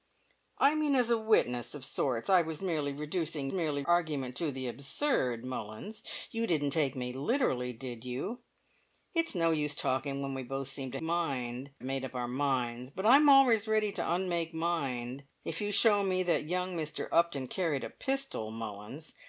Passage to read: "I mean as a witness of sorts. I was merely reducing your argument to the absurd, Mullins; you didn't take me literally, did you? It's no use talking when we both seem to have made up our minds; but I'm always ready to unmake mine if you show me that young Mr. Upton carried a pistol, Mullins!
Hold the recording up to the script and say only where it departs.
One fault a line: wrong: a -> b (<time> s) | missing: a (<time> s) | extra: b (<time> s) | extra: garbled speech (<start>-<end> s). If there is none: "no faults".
wrong: your -> merely (3.5 s)
wrong: have -> mine (11.0 s)